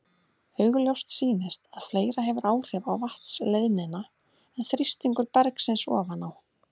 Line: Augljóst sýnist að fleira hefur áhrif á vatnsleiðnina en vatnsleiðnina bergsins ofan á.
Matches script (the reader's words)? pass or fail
fail